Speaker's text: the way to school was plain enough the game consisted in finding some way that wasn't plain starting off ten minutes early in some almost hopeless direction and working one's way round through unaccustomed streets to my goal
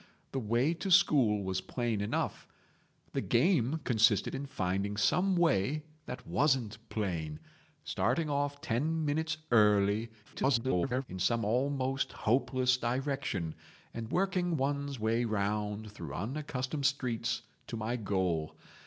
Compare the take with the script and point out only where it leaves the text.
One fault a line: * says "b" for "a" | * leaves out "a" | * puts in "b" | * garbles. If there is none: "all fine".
* garbles